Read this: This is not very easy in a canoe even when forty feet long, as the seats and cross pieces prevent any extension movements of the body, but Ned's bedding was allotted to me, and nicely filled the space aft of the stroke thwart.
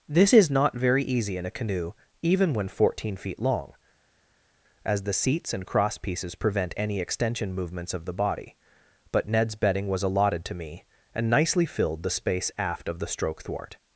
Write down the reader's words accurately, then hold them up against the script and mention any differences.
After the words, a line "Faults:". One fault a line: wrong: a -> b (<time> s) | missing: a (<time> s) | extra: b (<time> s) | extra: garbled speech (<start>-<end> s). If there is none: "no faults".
This is not very easy in a canoe even when fourteen feet long, as the seats and cross pieces prevent any extension movements of the body, but Ned's bedding was allotted to me, and nicely filled the space aft of the stroke thwart.
Faults:
wrong: forty -> fourteen (2.7 s)